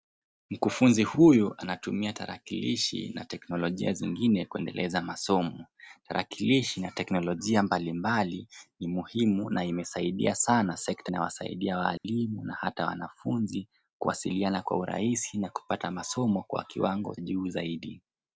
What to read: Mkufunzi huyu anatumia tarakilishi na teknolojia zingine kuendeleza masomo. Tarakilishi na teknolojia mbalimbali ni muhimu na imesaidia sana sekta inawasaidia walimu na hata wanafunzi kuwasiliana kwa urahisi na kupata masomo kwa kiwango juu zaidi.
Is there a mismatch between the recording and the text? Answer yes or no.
no